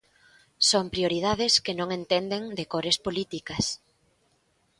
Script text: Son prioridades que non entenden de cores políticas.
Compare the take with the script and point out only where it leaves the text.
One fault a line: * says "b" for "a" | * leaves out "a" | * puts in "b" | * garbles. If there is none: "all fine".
all fine